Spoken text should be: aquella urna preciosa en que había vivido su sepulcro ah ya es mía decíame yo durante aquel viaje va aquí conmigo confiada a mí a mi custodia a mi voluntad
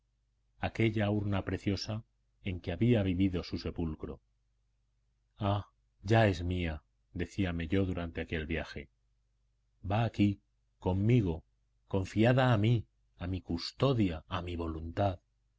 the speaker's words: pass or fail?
pass